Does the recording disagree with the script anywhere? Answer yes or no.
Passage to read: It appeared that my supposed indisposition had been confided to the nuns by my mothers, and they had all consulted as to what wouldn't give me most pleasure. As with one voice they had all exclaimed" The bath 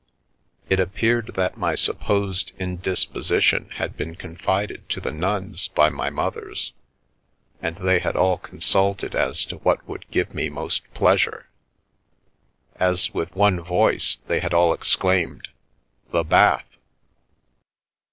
yes